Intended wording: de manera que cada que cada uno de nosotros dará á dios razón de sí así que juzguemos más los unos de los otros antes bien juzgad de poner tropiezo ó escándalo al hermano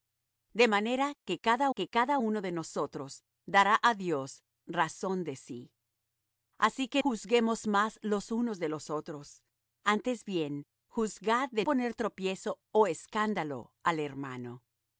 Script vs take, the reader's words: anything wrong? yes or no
no